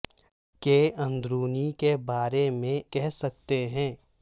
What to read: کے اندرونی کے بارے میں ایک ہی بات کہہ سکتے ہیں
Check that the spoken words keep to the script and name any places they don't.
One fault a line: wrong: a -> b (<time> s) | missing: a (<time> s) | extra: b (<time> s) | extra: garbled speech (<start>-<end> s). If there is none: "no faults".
missing: ایک ہی بات (2.8 s)